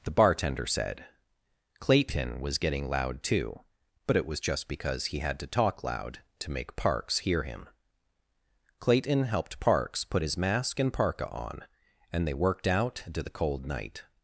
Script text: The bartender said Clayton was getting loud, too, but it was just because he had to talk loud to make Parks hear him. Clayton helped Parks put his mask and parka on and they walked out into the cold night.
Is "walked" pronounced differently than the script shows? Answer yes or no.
yes